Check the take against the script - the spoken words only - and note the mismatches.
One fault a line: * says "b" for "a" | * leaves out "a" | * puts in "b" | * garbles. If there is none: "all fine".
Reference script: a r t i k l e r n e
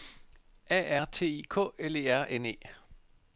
all fine